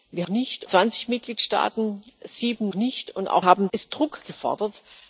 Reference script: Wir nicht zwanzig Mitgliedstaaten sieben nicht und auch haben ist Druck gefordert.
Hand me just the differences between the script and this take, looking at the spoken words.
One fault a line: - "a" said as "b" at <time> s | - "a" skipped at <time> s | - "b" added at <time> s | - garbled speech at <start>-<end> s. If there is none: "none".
none